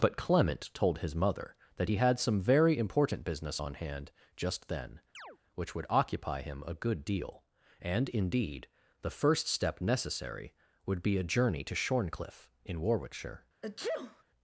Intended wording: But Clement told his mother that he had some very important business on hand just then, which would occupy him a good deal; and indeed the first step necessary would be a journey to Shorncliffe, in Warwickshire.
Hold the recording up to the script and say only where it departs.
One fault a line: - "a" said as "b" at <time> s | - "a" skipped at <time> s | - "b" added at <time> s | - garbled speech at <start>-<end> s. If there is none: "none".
none